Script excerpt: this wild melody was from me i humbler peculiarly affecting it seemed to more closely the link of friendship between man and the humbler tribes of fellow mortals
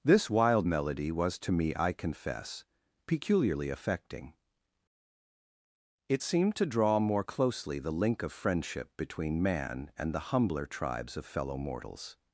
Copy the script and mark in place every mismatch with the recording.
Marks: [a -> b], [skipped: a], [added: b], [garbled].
this wild melody was [from -> to] me i [humbler -> confess] peculiarly affecting it seemed to [added: draw] more closely the link of friendship between man and the humbler tribes of fellow mortals